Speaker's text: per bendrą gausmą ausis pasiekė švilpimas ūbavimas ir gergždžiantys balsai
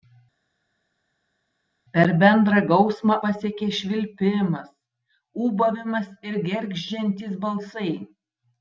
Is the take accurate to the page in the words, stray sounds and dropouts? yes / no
no